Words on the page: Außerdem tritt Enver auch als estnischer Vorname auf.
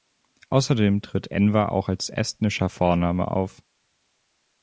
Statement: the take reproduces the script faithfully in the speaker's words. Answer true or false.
true